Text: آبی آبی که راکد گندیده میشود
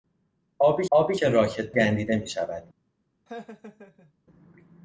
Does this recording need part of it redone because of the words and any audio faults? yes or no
yes